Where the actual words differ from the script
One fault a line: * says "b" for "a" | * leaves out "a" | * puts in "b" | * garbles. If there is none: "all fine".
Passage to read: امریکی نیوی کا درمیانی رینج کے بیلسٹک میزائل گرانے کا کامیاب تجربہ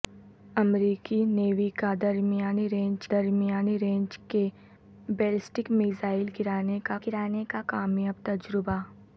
* puts in "درمیانی رینج"
* puts in "گرانے کا"